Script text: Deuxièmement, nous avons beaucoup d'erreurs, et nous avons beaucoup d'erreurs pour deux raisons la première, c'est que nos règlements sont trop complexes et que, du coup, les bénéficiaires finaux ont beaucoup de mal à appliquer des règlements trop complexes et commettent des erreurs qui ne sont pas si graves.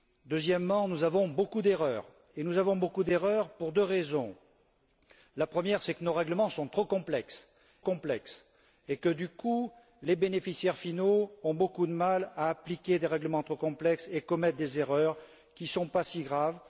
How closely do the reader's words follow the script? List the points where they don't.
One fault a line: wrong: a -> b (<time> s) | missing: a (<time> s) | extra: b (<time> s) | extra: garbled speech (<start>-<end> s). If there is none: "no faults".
extra: complexes (7.8 s)